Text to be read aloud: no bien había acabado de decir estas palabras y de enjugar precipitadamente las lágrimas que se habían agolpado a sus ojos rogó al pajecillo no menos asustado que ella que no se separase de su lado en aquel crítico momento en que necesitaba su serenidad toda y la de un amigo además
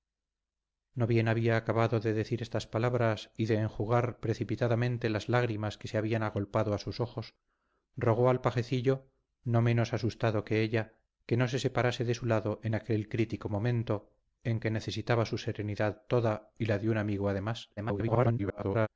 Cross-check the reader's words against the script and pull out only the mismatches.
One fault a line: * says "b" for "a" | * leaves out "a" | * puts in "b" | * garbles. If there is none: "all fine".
* garbles